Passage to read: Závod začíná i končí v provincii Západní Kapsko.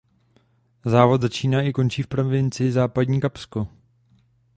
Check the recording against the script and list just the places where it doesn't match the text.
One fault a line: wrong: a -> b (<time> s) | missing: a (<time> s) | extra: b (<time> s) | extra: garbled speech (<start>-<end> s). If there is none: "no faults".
no faults